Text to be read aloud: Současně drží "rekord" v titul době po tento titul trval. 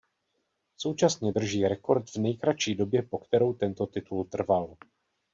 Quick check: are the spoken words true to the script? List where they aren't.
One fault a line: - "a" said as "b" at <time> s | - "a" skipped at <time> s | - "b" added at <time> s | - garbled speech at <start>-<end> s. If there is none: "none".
- "titul" said as "nejkratší" at 2.2 s
- "kterou" added at 3.2 s